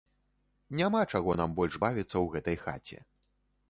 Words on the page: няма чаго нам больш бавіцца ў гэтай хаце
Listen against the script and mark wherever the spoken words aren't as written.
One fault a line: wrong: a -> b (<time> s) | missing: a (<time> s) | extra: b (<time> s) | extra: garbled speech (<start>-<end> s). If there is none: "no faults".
no faults